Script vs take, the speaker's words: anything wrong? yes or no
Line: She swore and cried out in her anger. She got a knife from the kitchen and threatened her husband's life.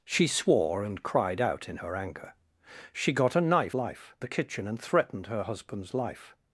yes